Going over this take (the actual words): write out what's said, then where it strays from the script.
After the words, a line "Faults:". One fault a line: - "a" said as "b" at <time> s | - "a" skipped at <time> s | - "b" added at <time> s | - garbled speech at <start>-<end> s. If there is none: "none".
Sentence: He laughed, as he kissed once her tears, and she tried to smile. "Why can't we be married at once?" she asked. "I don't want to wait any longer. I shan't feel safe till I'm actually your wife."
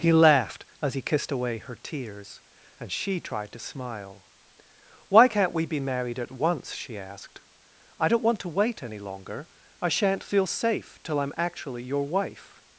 He laughed, as he kissed away her tears, and she tried to smile. "Why can't we be married at once?" she asked. "I don't want to wait any longer. I shan't feel safe till I'm actually your wife."
Faults:
- "once" said as "away" at 1.3 s